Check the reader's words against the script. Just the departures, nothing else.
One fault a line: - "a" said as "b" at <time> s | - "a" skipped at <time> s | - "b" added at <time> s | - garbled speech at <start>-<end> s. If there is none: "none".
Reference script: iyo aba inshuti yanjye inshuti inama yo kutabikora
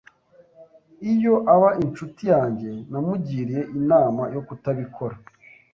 - "inshuti" said as "namugiriye" at 2.9 s